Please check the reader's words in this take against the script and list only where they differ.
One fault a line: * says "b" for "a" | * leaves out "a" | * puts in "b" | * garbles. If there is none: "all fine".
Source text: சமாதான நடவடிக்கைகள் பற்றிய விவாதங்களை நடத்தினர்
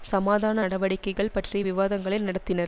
all fine